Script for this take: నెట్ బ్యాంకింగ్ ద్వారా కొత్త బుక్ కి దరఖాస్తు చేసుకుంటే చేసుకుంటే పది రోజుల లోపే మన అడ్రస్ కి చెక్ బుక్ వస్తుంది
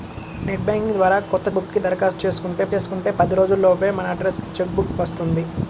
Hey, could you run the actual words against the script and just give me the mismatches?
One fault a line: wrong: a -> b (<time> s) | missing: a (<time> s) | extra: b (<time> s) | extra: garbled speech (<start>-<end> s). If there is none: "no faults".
no faults